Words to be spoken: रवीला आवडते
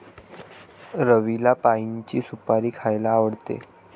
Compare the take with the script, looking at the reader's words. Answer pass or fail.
fail